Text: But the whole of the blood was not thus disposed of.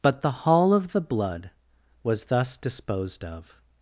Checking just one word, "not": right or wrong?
wrong